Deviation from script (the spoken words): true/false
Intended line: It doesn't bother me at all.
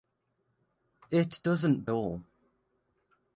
true